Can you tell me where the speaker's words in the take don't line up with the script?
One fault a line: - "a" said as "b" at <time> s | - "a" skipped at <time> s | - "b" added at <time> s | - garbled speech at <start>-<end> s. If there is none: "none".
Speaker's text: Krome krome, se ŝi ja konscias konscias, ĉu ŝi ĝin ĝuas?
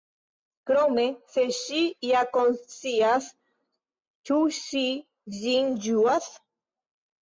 - "krome" skipped at 1.0 s
- "konscias" skipped at 3.3 s